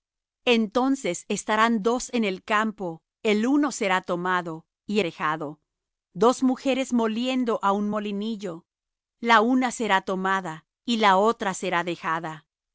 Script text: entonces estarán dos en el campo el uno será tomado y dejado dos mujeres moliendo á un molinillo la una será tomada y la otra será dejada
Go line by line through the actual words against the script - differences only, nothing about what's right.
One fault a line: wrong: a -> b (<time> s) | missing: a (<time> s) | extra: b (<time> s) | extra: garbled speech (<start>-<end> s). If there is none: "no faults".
no faults